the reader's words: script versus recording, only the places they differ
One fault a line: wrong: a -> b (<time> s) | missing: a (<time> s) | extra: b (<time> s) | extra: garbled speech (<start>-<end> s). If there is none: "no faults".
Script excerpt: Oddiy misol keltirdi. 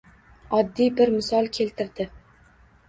extra: bir (1.0 s)